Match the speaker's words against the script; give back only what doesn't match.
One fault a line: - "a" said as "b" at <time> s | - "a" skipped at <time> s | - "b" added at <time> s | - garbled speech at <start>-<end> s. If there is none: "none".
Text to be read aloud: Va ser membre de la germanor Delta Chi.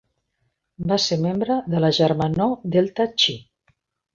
none